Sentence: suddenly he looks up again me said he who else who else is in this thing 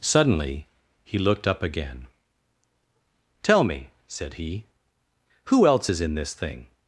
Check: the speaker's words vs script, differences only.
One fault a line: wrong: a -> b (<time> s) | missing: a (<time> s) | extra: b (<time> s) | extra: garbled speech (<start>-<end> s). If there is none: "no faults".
wrong: looks -> looked (1.2 s)
extra: tell (3.4 s)
missing: who else (5.9 s)